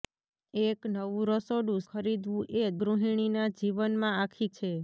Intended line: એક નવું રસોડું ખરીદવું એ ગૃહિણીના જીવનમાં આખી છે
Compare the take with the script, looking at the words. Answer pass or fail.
pass